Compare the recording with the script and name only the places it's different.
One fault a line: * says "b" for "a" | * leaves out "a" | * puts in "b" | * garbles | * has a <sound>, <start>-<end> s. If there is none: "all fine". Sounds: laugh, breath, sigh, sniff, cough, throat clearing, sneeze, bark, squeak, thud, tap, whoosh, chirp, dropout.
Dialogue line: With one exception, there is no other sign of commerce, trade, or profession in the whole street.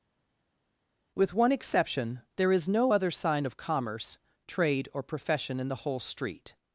all fine